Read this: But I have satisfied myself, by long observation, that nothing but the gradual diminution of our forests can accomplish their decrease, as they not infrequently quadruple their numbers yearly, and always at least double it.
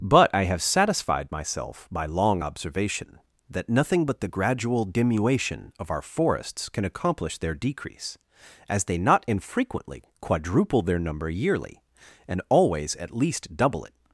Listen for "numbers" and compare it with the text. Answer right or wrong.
wrong